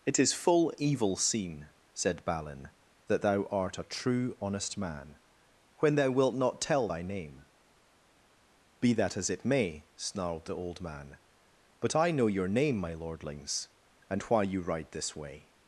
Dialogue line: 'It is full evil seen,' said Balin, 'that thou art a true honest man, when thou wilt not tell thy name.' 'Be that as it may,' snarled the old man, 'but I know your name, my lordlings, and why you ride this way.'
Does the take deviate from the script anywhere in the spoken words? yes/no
no